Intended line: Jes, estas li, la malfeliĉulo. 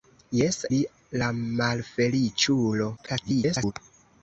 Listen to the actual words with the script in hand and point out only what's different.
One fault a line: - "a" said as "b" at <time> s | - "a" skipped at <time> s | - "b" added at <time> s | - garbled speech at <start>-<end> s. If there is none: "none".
- "estas" skipped at 0.6 s
- garbled speech at 3.0-3.7 s